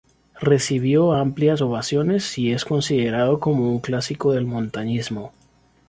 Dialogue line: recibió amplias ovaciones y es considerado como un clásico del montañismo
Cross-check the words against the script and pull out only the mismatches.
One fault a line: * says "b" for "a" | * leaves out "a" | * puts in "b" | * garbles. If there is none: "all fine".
all fine